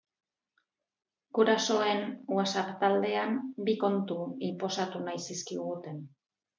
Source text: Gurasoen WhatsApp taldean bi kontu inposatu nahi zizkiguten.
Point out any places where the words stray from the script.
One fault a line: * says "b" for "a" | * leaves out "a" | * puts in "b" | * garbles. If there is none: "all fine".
all fine